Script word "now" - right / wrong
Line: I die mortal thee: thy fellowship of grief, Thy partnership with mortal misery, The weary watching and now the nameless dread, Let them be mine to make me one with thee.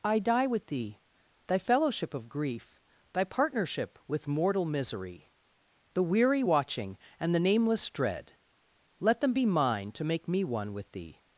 wrong